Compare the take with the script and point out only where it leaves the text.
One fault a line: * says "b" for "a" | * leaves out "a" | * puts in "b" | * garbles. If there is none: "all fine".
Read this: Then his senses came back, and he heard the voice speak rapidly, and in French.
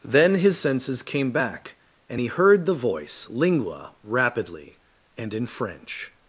* says "lingua" for "speak"